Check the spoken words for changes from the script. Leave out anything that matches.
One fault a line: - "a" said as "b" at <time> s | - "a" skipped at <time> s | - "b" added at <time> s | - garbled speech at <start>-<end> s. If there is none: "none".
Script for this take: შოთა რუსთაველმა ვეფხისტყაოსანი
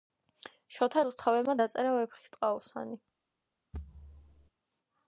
- "დაწერა" added at 1.6 s